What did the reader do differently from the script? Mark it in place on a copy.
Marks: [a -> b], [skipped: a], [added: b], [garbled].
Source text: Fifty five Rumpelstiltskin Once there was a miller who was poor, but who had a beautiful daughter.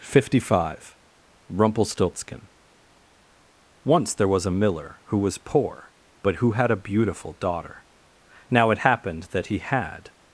Fifty five Rumpelstiltskin Once there was a miller who was poor, but who had a beautiful daughter. [added: Now it happened that he had]